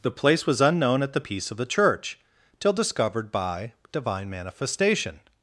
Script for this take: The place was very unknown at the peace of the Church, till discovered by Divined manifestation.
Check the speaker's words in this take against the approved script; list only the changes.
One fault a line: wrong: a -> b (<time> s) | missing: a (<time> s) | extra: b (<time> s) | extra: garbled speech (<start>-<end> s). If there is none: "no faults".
missing: very (0.6 s)
wrong: Divined -> Divine (3.9 s)